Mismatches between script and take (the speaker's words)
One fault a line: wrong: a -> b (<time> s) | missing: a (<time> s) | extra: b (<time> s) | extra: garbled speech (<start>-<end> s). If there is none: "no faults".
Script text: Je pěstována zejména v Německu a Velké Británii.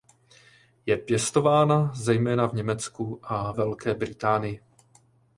no faults